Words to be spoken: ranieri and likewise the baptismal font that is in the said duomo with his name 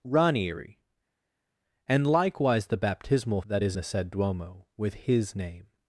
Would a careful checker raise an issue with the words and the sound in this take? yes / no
yes